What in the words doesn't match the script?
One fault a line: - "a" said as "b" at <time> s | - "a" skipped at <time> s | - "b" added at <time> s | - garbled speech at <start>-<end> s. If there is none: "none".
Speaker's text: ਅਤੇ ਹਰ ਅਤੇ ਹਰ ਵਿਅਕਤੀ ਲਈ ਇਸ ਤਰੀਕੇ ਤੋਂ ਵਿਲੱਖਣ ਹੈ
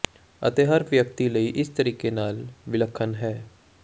- "ਅਤੇ ਹਰ" skipped at 0.8 s
- "ਤੋਂ" said as "ਨਾਲ" at 2.1 s